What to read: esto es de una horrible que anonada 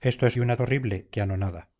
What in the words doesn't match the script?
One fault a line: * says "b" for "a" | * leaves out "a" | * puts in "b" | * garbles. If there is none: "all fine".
all fine